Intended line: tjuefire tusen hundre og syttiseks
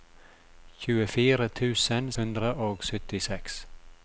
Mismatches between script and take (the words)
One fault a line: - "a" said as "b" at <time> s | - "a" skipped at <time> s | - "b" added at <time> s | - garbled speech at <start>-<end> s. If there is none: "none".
none